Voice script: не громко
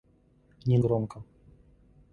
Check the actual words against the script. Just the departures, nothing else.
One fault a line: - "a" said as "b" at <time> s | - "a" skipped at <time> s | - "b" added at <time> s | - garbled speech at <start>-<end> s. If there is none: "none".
none